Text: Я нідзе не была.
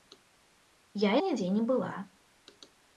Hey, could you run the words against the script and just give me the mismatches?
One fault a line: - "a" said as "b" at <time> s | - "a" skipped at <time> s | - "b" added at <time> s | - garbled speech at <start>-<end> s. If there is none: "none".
none